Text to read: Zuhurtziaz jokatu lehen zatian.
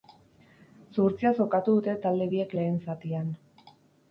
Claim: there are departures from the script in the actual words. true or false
true